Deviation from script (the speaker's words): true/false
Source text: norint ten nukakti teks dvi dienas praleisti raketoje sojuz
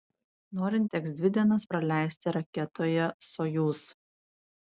true